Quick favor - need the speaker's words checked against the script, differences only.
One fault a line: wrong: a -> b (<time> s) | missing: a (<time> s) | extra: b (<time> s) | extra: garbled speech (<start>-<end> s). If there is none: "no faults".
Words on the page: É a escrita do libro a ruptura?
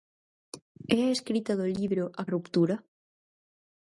no faults